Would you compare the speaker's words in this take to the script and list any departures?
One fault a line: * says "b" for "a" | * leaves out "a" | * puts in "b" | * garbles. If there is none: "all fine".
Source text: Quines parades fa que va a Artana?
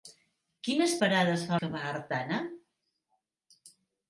all fine